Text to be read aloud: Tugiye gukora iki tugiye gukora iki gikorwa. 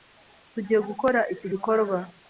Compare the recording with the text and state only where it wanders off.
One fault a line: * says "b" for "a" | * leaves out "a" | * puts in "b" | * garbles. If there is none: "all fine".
* leaves out "tugiye gukora iki"